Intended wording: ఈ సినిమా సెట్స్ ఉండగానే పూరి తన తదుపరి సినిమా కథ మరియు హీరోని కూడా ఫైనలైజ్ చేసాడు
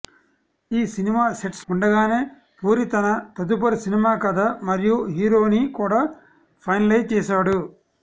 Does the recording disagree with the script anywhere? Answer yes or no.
no